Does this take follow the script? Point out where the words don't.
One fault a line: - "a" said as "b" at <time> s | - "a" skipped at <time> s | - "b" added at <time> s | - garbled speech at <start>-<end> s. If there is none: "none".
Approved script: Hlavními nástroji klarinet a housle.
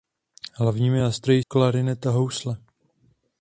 none